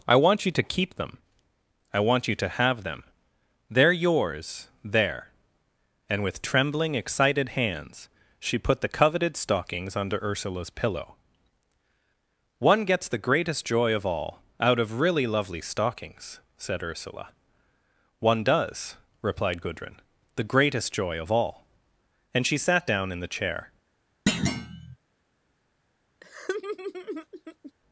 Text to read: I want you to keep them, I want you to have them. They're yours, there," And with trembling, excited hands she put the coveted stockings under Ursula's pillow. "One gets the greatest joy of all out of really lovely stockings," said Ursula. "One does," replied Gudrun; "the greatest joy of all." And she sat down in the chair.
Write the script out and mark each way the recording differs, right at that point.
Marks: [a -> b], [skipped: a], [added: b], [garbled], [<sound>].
I want you to keep them, I want you to have them. They're yours, there," And with trembling, excited hands she put the coveted stockings under Ursula's pillow. "One gets the greatest joy of all out of really lovely stockings," said Ursula. "One does," replied Gudrun; "the greatest joy of all." And she sat down in the chair. [thud] [laugh]